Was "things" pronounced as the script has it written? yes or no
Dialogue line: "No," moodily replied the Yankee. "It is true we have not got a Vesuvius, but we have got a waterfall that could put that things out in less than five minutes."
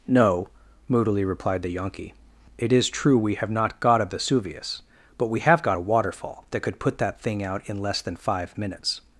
no